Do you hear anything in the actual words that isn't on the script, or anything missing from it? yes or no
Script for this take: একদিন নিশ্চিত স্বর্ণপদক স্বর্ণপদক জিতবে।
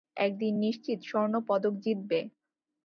yes